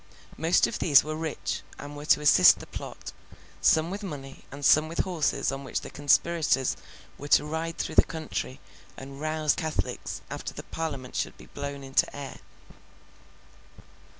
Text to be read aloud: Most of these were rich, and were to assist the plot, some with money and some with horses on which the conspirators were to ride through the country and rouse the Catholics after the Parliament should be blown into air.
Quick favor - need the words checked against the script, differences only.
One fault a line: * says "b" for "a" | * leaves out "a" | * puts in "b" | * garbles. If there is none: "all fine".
* leaves out "the"